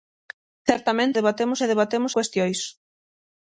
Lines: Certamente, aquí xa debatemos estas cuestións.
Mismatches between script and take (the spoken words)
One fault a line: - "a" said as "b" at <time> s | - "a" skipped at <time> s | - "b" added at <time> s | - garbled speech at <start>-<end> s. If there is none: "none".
- "aquí" said as "debatemos" at 1.2 s
- "estas" skipped at 2.1 s